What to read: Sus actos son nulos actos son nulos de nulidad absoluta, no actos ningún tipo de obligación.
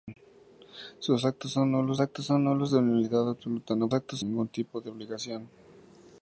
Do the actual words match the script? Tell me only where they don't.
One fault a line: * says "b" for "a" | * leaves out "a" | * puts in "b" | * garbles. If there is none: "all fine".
all fine